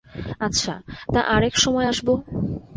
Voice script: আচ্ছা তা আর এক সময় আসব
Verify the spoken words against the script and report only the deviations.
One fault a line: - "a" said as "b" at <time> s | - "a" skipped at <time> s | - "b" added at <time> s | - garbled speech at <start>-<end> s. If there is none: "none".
none